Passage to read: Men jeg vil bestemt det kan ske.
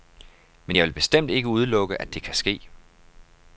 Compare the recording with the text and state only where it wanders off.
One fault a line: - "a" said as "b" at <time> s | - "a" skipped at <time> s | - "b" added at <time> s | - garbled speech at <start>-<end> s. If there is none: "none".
- "ikke udelukke at" added at 1.3 s